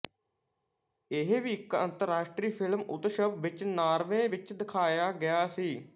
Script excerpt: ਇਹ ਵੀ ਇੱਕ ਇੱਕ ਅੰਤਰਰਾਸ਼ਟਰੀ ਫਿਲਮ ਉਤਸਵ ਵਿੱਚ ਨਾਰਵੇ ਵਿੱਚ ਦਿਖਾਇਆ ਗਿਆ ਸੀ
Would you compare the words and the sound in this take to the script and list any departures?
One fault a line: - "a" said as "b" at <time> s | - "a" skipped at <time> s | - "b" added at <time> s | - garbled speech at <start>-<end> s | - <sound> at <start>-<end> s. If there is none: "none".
- "ਇੱਕ" skipped at 1.7 s